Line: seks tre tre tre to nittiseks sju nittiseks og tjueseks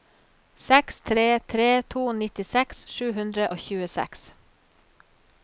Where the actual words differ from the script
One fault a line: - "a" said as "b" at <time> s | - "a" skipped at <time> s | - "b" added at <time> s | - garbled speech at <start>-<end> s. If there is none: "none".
- "tre" skipped at 1.7 s
- "nittiseks" said as "hundre" at 3.2 s